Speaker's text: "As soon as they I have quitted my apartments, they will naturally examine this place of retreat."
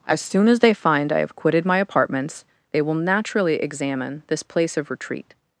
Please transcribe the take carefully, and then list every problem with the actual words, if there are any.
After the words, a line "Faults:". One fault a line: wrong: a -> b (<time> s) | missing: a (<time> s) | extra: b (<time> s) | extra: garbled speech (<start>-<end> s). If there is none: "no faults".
"As soon as they find I have quitted my apartments, they will naturally examine this place of retreat."
Faults:
extra: find (0.7 s)